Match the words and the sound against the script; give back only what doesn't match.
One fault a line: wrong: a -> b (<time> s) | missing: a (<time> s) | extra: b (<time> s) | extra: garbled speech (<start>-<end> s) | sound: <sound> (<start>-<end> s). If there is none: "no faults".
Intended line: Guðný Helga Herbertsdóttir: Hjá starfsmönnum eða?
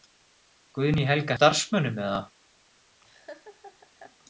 missing: Herbertsdóttir Hjá (1.4 s)
sound: laugh (3.0-4.2 s)